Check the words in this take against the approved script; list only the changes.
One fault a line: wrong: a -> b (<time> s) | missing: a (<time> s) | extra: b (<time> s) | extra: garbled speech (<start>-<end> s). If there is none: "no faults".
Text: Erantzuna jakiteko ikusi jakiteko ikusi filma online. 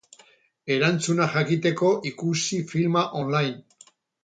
missing: jakiteko ikusi (2.6 s)